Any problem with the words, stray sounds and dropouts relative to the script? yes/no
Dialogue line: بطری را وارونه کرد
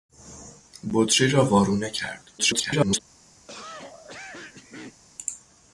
yes